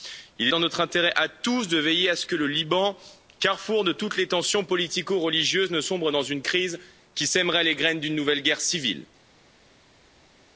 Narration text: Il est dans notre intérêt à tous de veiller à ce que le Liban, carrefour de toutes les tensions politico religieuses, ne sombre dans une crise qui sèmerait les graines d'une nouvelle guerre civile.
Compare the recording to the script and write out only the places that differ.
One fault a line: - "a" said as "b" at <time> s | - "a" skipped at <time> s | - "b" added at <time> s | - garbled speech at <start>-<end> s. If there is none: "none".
none